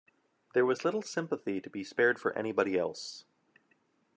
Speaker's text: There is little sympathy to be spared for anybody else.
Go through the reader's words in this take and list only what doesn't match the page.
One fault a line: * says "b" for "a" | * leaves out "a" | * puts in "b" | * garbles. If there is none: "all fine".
* says "was" for "is"